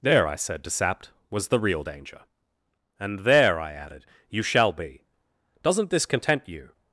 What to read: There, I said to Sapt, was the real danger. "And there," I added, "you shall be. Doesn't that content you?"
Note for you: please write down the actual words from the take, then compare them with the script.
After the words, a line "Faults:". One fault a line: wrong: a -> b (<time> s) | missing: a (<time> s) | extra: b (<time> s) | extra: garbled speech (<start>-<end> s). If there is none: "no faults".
There, I said to Sapt, was the real danger. "And there," I added, "you shall be. Doesn't this content you?"
Faults:
wrong: that -> this (5.9 s)